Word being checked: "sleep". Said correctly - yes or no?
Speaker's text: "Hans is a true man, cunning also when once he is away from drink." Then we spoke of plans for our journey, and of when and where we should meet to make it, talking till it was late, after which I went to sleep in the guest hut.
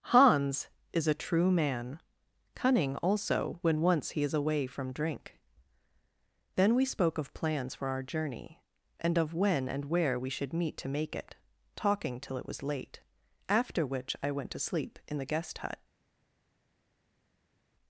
yes